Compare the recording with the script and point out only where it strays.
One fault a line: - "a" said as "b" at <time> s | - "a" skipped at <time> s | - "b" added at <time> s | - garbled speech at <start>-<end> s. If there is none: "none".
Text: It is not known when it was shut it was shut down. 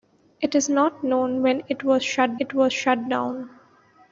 none